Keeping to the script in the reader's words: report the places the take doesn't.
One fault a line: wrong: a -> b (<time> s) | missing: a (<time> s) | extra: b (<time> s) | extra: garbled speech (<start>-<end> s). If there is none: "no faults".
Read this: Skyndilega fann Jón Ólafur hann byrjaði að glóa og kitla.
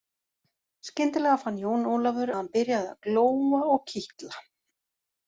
no faults